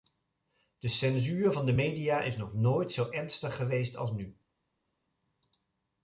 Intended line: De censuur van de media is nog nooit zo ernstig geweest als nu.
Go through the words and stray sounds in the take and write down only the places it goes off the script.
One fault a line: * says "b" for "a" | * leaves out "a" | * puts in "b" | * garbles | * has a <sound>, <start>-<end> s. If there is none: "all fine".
all fine